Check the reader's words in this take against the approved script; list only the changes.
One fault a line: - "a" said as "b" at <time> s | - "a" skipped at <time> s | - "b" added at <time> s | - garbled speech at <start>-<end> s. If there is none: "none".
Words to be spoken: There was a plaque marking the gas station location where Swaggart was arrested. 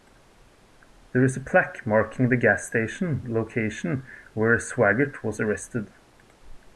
- "was" said as "is" at 1.2 s